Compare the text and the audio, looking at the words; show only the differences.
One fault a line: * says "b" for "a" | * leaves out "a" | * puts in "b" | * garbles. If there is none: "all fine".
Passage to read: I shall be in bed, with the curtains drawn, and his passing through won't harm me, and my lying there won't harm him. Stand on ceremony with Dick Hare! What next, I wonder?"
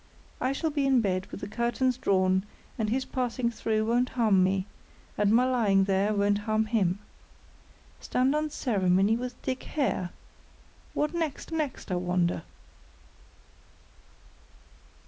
* puts in "next"